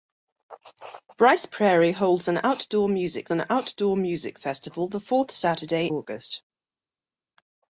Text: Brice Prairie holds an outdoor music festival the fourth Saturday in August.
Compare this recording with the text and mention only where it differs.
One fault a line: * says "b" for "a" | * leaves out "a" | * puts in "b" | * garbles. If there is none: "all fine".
* puts in "an outdoor music"
* leaves out "in"